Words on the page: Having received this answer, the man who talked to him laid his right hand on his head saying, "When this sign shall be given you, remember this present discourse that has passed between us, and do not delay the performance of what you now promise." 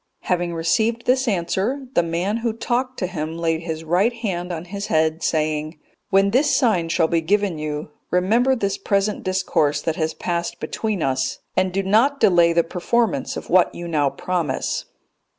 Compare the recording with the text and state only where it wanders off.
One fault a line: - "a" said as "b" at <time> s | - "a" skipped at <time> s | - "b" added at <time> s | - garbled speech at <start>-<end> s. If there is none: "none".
none